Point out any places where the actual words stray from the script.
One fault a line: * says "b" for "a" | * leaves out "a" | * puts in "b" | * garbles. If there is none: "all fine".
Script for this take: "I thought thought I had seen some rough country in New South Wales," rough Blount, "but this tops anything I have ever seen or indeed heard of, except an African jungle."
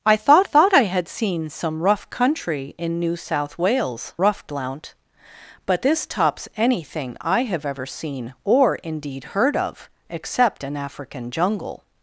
all fine